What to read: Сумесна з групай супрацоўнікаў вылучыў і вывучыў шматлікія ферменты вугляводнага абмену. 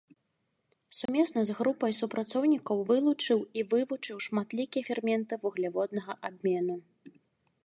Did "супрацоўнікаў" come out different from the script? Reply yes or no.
no